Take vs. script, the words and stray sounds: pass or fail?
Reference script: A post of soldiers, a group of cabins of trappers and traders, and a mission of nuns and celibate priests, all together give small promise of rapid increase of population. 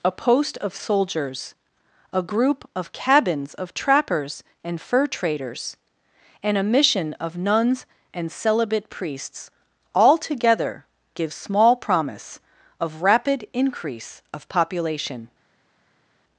fail